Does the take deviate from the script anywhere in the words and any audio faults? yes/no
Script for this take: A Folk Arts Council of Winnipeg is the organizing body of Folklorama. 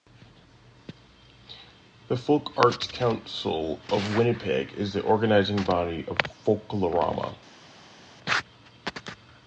yes